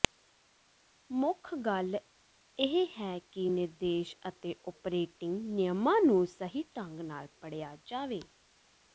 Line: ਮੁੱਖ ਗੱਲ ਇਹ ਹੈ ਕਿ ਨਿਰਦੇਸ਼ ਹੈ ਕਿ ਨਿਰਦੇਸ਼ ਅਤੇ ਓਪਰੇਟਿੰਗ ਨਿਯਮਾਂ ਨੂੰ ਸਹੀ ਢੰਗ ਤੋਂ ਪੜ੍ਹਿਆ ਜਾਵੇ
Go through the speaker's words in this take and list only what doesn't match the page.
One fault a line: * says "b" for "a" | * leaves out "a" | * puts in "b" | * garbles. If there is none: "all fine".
* leaves out "ਹੈ ਕਿ ਨਿਰਦੇਸ਼"
* says "ਨਾਲ" for "ਤੋਂ"